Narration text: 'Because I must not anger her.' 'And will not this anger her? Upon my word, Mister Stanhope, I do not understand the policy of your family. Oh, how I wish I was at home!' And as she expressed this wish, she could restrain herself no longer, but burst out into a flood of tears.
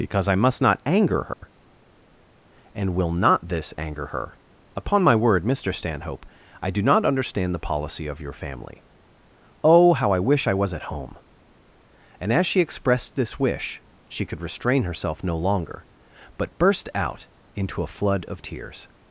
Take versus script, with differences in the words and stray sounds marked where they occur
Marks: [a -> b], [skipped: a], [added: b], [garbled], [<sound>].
'Because I must not anger her.' [dropout] 'And will not this anger her? Upon my word, Mister Stanhope, I do not understand the policy of your family. Oh, how I wish I was at home!' And as she expressed this wish, she could restrain herself no longer, but burst out into a flood of tears.